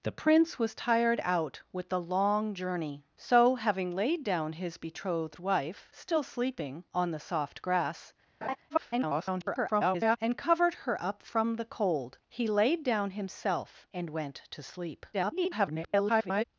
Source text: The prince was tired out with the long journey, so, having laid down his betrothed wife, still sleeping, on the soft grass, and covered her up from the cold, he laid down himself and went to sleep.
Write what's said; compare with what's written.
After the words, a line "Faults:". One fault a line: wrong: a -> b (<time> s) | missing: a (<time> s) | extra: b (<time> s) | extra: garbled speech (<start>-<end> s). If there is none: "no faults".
The prince was tired out with the long journey, so, having laid down his betrothed wife, still sleeping, on the soft grass, [garbled] and covered her up from the cold, he laid down himself and went to sleep. [garbled]
Faults:
extra: garbled speech (8.7-10.2 s)
extra: garbled speech (15.1-16.4 s)